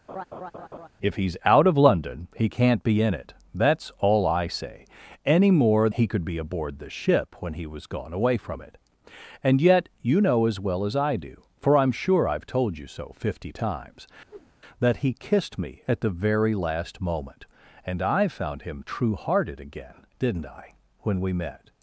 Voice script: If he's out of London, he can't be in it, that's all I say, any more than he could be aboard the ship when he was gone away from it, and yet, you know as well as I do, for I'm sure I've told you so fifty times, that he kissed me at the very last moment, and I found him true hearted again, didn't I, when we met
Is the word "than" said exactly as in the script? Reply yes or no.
no